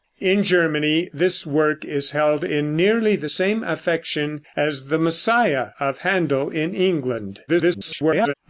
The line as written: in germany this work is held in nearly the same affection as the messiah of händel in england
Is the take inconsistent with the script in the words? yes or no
yes